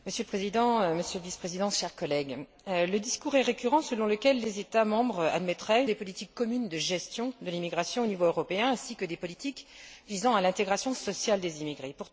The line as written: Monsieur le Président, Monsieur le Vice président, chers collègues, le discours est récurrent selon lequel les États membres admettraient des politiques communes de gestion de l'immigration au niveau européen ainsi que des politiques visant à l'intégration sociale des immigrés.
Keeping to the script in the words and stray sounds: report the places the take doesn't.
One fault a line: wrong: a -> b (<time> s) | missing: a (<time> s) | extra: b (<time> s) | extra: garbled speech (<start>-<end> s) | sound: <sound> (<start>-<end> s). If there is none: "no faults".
no faults